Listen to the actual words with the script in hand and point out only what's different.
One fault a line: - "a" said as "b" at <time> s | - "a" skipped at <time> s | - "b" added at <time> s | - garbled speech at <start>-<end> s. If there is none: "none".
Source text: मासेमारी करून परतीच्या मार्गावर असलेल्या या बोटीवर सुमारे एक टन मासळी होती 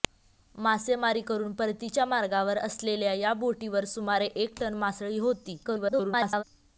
- garbled speech at 5.6-6.4 s